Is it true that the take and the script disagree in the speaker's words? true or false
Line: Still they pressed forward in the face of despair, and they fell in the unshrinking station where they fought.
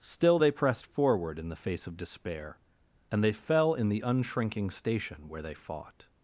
false